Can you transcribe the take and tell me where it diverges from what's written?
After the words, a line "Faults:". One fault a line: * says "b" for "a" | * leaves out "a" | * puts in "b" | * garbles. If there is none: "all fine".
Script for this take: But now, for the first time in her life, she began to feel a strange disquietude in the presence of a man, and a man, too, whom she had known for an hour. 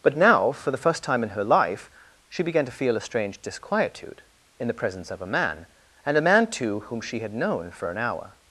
But now, for the first time in her life, she began to feel a strange disquietude in the presence of a man, and a man, too, whom she had known for an hour.
Faults:
all fine